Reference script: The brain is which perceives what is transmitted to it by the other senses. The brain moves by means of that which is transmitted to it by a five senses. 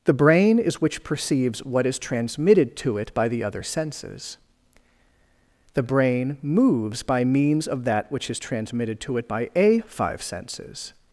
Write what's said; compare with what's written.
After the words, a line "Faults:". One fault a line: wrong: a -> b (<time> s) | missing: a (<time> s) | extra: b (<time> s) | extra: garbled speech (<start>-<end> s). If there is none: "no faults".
The brain is which perceives what is transmitted to it by the other senses. The brain moves by means of that which is transmitted to it by a five senses.
Faults:
no faults